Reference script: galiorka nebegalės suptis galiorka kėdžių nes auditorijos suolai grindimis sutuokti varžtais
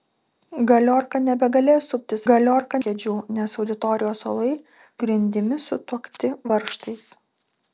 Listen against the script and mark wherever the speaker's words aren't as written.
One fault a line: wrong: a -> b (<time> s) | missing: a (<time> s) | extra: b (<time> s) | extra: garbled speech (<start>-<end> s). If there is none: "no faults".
no faults